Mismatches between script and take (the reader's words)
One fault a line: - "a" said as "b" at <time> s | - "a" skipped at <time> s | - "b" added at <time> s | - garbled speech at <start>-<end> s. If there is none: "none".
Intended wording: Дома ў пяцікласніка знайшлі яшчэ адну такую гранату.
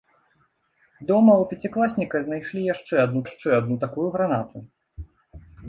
- "яшчэ адну" added at 3.3 s